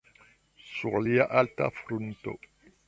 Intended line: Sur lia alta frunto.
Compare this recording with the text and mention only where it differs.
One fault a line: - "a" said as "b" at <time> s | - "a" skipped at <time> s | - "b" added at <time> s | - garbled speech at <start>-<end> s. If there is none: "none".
none